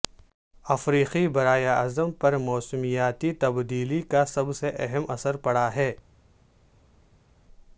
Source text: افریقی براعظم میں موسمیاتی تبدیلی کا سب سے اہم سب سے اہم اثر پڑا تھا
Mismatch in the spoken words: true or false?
true